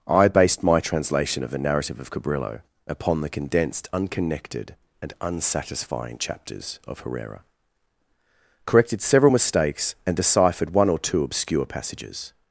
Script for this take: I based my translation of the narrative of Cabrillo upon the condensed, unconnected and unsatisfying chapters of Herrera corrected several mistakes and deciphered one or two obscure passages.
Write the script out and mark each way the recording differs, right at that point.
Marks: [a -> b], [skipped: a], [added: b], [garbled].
I based my translation of the narrative of Cabrillo upon the condensed, unconnected and unsatisfying chapters of Herrera corrected several mistakes and deciphered one or two obscure passages.